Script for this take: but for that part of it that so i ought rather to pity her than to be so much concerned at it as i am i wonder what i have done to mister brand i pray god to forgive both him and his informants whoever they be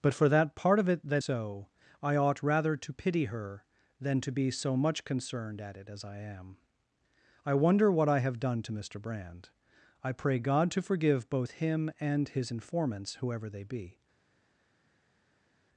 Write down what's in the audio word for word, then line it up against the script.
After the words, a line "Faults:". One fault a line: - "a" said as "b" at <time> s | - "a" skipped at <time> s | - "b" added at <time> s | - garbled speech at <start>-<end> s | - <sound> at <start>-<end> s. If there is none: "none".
but for that part of it that so i ought rather to pity her than to be so much concerned at it as i am i wonder what i have done to mister brand i pray god to forgive both him and his informants whoever they be
Faults:
none